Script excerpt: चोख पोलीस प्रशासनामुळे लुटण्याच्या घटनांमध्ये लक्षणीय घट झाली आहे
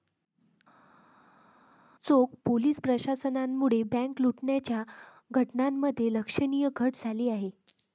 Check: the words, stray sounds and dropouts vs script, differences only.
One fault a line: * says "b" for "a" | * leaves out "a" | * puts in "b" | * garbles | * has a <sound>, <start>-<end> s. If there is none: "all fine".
* puts in "बँक"